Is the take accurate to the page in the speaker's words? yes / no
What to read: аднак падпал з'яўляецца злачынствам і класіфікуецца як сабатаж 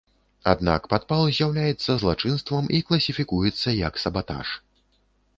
yes